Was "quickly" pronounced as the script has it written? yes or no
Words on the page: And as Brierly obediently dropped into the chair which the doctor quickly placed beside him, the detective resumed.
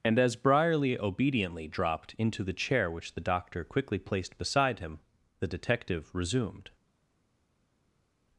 yes